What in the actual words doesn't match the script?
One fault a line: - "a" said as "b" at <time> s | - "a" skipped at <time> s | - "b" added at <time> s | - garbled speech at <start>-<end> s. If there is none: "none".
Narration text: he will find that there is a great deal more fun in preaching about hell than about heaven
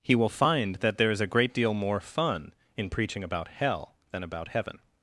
none